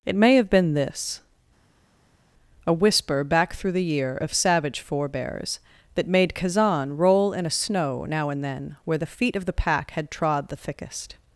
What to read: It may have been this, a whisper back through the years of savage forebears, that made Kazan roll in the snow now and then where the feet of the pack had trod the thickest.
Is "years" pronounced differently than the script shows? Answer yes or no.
yes